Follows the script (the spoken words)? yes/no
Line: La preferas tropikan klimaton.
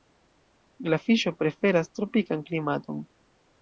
no